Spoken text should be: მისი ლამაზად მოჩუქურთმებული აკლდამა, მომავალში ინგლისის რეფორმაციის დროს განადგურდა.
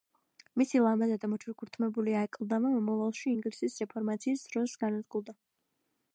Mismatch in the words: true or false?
false